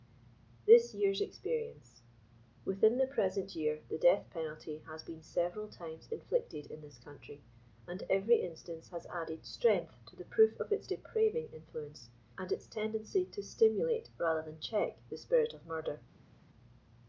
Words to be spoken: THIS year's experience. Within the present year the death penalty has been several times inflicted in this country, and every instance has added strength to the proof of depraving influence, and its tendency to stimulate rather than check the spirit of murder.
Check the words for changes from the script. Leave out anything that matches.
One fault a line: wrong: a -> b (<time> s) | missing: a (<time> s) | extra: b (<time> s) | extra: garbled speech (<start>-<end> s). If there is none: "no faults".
extra: its (10.7 s)